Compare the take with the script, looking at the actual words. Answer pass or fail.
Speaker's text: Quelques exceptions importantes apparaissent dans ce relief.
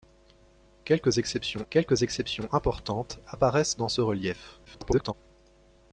fail